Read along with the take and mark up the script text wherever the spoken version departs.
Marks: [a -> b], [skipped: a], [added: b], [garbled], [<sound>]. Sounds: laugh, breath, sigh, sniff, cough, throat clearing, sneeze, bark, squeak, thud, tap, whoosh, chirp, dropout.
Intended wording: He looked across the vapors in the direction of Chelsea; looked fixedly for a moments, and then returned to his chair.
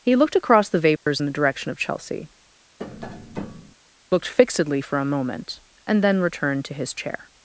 He looked across the vapors [dropout] in the direction of Chelsea; [tap] looked fixedly for a [moments, -> moment] and then returned to his chair.